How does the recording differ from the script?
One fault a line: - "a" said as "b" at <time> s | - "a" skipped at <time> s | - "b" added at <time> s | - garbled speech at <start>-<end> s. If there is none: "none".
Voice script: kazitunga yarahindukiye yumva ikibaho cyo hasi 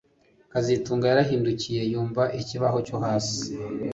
none